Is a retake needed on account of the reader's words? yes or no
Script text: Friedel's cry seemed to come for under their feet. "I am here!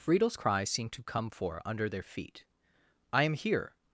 no